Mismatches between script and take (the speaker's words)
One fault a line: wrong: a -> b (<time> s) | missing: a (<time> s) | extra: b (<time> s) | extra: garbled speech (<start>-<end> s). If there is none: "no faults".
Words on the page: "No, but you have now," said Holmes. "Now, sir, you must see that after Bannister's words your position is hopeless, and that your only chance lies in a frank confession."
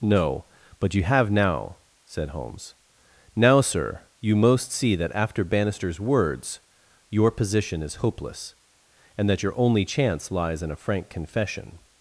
wrong: must -> most (4.3 s)